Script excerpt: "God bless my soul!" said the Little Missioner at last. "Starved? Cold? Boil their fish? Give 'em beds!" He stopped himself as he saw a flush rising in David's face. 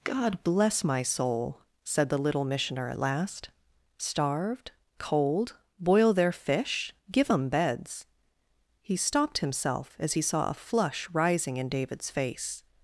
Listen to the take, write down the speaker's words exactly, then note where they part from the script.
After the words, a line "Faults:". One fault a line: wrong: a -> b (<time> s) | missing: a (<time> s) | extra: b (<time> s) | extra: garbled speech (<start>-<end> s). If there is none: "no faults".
"God bless my soul!" said the Little Missioner at last. "Starved? Cold? Boil their fish? Give 'em beds!" He stopped himself as he saw a flush rising in David's face.
Faults:
no faults